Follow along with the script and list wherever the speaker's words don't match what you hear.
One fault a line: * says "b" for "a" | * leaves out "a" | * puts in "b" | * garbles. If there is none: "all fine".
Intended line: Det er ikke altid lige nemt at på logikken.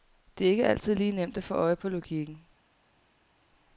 * puts in "få øje"